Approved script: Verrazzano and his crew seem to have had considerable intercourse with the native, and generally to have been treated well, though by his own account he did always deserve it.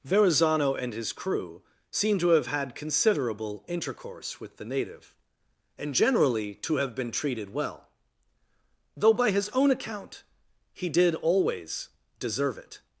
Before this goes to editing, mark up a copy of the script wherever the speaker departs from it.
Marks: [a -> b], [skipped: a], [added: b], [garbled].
Verrazzano and his crew seem to have had considerable intercourse with the native, and generally to have been treated well, though by his own account he did always deserve it.